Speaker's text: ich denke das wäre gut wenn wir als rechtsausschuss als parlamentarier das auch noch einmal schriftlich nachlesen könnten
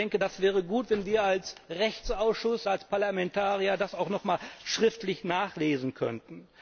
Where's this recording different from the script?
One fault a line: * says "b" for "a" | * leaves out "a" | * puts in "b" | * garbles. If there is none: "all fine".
all fine